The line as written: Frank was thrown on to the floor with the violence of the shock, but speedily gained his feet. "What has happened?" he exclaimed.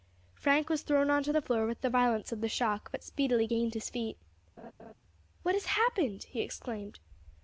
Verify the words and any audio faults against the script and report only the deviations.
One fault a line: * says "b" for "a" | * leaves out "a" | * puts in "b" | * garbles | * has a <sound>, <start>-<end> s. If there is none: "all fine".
* has a laugh, 4.6-4.9 s